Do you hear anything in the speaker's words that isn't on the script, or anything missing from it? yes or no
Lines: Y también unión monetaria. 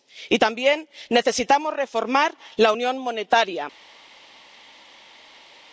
yes